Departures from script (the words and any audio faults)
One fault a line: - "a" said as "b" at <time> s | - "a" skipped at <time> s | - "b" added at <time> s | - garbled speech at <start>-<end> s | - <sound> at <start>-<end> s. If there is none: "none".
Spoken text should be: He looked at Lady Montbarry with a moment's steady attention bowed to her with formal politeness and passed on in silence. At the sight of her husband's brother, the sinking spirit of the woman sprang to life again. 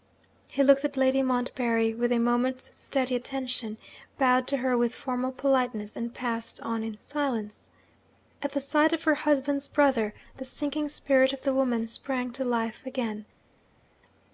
none